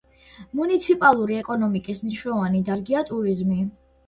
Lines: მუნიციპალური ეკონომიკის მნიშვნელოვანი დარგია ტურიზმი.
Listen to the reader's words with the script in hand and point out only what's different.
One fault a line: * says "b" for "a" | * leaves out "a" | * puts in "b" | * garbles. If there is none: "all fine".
all fine